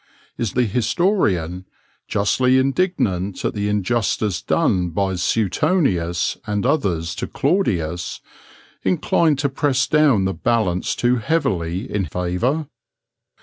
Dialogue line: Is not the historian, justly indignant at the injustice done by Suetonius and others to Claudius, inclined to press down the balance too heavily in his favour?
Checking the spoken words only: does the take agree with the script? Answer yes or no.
no